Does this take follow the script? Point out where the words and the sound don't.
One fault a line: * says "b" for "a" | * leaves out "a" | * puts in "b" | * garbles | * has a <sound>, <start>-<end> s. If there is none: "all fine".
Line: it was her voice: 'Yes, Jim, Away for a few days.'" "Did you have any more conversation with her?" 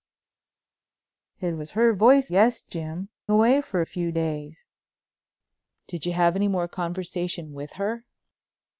all fine